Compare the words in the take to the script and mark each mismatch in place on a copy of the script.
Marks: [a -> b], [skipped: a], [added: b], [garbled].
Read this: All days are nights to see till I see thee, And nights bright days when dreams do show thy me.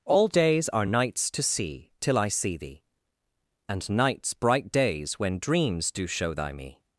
All days are nights to see till I see thee, And nights bright days when dreams do show thy me.